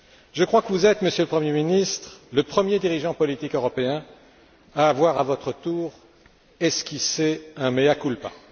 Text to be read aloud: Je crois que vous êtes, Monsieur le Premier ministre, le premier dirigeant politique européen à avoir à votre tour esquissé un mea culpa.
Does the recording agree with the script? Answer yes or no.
yes